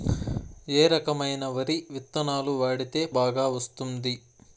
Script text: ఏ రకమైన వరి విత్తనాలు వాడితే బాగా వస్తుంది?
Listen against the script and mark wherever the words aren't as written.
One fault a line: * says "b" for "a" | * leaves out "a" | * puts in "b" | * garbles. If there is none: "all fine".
all fine